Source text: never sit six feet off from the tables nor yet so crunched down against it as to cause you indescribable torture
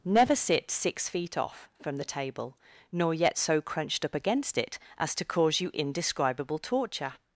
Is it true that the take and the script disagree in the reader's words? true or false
true